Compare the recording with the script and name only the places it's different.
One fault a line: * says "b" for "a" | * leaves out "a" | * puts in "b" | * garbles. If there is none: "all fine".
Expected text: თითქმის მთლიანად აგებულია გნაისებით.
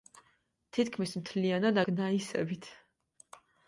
* leaves out "აგებულია"